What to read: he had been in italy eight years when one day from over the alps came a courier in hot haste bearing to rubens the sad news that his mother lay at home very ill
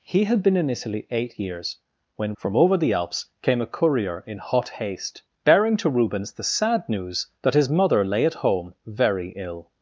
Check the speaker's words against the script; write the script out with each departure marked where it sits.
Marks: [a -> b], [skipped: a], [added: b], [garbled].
he had been in italy eight years when [skipped: one day] from over the alps came a courier in hot haste bearing to rubens the sad news that his mother lay at home very ill